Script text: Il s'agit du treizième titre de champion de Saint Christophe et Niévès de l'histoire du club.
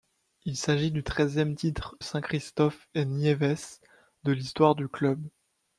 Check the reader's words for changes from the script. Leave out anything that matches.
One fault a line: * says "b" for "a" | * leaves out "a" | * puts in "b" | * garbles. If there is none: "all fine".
* leaves out "de champion de"